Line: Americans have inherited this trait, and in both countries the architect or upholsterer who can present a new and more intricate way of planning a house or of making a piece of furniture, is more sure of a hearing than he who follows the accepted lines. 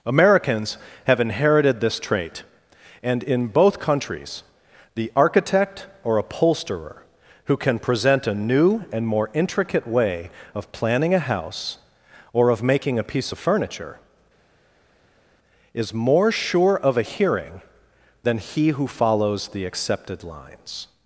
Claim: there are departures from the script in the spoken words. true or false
false